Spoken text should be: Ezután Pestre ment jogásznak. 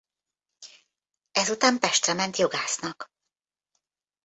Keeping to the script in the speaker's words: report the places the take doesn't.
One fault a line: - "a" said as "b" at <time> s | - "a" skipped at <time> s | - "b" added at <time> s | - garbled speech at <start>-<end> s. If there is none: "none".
none